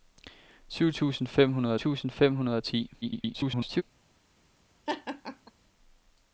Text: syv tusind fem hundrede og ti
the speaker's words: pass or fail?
fail